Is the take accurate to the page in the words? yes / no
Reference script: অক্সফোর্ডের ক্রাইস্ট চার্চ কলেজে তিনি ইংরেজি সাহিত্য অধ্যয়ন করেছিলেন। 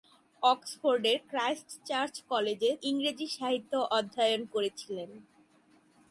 no